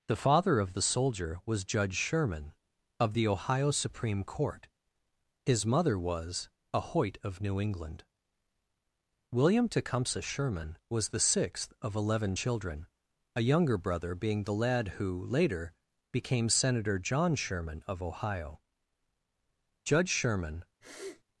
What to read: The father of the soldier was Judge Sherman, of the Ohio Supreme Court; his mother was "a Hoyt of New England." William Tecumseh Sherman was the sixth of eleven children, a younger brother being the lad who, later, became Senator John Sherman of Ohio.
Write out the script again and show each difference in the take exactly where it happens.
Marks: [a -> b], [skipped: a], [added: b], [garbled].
The father of the soldier was Judge Sherman, of the Ohio Supreme Court; his mother was "a Hoyt of New England." William Tecumseh Sherman was the sixth of eleven children, a younger brother being the lad who, later, became Senator John Sherman of Ohio. [added: Judge Sherman]